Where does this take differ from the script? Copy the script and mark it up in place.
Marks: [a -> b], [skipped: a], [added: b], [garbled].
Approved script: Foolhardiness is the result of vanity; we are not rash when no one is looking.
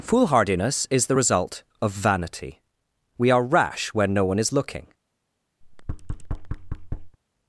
Foolhardiness is the result of vanity; we are [skipped: not] rash when no one is looking.